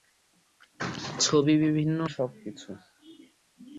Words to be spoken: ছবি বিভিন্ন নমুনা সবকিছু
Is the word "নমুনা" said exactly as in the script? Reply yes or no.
no